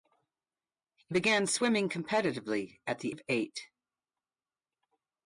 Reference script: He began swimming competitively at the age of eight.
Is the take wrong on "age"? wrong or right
wrong